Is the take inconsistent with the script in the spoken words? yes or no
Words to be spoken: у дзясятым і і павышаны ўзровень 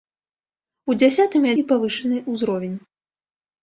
no